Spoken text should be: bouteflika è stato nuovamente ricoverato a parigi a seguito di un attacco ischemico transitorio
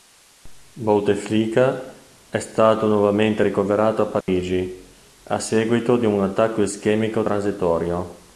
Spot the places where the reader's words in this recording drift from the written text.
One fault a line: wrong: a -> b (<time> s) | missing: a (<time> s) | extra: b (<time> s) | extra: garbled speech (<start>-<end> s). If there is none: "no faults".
no faults